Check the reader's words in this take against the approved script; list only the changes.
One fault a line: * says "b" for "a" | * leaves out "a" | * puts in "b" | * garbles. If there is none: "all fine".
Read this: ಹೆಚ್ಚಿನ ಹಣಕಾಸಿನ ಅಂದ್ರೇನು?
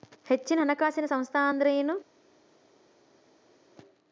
* puts in "ಸಂಸ್ಥಾ"